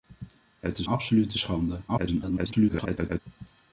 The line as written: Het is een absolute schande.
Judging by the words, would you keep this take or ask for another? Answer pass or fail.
fail